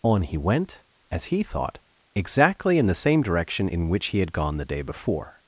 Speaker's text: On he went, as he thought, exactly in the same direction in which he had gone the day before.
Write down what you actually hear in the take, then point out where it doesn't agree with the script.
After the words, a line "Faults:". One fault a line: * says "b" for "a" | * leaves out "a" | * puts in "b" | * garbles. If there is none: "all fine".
On he went, as he thought, exactly in the same direction in which he had gone the day before.
Faults:
all fine